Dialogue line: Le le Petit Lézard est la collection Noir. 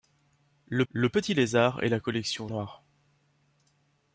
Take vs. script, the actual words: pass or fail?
pass